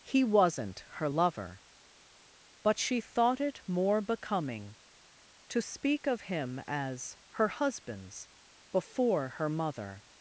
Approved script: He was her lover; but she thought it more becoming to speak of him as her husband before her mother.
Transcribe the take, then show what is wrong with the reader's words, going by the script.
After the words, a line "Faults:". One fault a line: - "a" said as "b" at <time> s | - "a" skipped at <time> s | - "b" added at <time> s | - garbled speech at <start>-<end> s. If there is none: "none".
He wasn't her lover; but she thought it more becoming to speak of him as her husbands before her mother.
Faults:
- "was" said as "wasn't" at 0.2 s
- "husband" said as "husbands" at 7.5 s